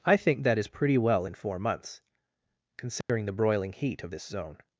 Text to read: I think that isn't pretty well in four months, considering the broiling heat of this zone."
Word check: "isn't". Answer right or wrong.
wrong